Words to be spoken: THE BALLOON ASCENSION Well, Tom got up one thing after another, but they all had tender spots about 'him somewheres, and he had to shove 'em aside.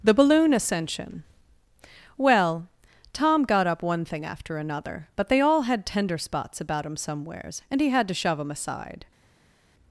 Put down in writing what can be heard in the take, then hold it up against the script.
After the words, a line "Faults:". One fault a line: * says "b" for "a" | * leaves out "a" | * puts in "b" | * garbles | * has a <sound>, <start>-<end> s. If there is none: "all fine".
THE BALLOON ASCENSION Well, Tom got up one thing after another, but they all had tender spots about 'him somewheres, and he had to shove 'em aside.
Faults:
all fine